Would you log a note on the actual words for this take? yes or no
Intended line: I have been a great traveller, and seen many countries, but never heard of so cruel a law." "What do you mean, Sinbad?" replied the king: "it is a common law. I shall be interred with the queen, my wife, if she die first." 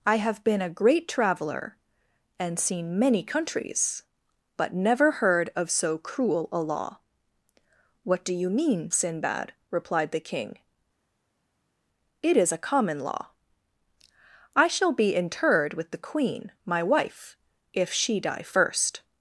no